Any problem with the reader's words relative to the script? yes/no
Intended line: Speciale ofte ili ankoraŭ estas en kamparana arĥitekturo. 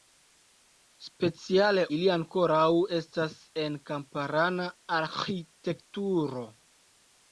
yes